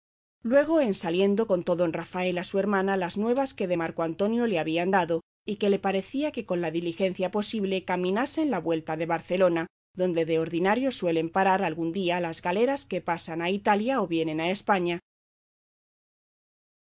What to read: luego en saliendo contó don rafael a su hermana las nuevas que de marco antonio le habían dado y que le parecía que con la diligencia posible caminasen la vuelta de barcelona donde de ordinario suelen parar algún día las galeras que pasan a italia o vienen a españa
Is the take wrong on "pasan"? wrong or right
right